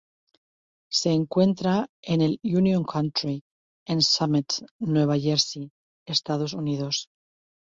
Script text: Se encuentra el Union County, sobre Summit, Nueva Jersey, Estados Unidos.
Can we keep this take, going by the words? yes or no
no